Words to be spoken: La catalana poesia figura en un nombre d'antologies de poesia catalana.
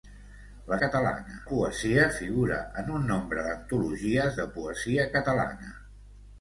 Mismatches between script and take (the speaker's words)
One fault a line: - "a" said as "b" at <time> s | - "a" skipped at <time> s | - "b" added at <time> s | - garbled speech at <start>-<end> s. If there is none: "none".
none